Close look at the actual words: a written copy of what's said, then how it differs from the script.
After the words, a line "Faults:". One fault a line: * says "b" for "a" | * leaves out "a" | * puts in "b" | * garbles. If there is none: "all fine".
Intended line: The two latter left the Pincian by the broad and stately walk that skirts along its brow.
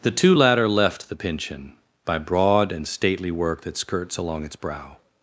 The two latter left the Pincian by broad and stately work that skirts along its brow.
Faults:
* leaves out "the"
* says "work" for "walk"